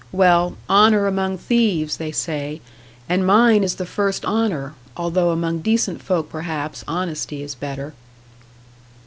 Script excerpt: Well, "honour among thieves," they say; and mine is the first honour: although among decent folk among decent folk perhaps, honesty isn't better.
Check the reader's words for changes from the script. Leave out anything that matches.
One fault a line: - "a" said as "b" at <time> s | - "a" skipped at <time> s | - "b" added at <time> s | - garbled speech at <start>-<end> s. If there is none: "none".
- "among decent folk" skipped at 6.3 s
- "isn't" said as "is" at 7.4 s